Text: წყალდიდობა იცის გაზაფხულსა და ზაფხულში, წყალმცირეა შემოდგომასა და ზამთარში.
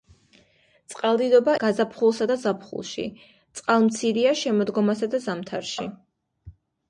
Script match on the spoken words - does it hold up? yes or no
no